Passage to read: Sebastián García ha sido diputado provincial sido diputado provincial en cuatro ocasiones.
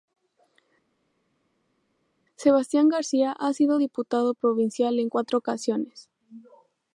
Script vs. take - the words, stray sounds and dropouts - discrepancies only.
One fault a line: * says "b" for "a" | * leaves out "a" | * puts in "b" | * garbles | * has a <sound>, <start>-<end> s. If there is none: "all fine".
* leaves out "sido diputado provincial"